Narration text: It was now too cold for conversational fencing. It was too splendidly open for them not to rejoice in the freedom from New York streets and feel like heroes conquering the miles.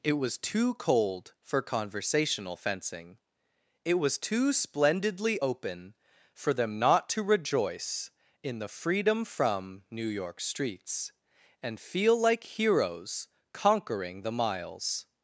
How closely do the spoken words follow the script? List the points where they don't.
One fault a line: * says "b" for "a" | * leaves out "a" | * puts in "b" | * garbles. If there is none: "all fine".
* leaves out "now"